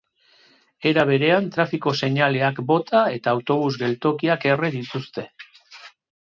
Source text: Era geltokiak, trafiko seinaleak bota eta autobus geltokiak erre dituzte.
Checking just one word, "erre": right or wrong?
right